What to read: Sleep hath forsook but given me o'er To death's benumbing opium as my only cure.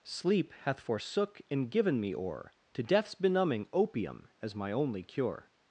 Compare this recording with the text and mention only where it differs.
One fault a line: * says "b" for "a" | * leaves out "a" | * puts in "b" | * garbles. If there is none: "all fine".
* says "and" for "but"